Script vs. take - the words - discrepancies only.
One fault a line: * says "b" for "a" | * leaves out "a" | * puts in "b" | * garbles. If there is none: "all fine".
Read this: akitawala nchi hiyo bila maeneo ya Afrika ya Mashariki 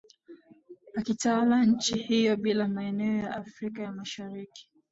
all fine